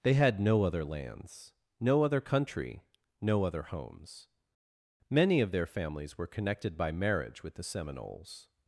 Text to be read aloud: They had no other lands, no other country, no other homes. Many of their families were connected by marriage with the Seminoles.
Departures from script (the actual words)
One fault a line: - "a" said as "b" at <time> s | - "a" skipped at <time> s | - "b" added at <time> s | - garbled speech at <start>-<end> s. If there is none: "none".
none